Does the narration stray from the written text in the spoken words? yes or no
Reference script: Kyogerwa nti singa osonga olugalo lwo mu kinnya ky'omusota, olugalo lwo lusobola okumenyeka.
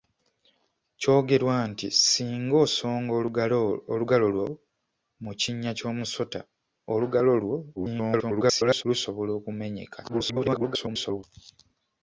yes